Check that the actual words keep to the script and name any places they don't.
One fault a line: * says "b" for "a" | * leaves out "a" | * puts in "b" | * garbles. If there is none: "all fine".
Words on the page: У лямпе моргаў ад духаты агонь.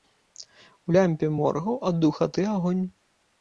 all fine